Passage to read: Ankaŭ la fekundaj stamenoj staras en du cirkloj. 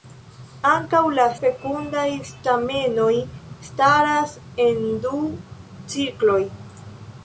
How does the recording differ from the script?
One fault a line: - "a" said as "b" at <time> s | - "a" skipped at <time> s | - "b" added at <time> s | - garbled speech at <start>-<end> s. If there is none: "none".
none